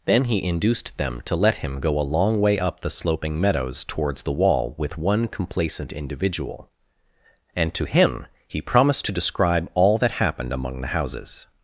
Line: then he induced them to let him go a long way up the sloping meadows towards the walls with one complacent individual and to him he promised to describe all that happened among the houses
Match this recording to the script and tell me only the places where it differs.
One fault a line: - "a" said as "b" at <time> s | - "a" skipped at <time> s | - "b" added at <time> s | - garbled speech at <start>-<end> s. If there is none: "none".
- "walls" said as "wall" at 4.3 s